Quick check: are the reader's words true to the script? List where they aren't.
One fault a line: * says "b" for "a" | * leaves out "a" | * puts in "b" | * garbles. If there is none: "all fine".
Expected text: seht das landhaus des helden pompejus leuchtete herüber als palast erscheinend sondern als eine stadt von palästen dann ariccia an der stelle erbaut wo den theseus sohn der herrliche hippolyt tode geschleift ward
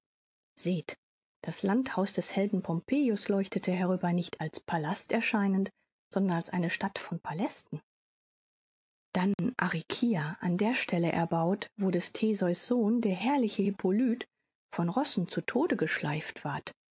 * puts in "nicht"
* says "des" for "den"
* puts in "von rossen zu"